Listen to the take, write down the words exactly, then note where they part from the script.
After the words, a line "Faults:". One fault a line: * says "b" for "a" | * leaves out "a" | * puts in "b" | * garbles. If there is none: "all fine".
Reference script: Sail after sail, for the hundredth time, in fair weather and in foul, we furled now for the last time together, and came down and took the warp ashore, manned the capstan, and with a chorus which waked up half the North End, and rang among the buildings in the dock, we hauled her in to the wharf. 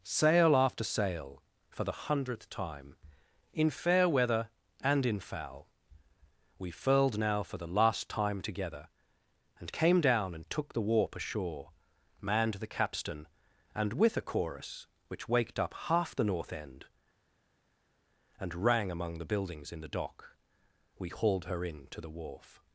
Sail after sail, for the hundredth time, in fair weather and in foul, we furled now for the last time together, and came down and took the warp ashore, manned the capstan, and with a chorus which waked up half the North End, and rang among the buildings in the dock, we hauled her in to the wharf.
Faults:
all fine